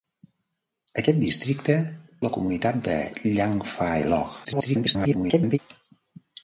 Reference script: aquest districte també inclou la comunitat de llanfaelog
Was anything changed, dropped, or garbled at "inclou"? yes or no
yes